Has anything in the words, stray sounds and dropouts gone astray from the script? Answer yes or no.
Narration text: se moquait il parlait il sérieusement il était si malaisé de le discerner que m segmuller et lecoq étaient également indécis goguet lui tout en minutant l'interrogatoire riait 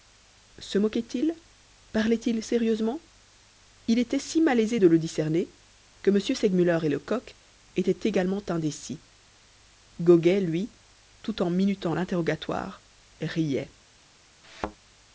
yes